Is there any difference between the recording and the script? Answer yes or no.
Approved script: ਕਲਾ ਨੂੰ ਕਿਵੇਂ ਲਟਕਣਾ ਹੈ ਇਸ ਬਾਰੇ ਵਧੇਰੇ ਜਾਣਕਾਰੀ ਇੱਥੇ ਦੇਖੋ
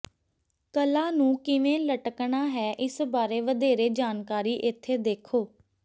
no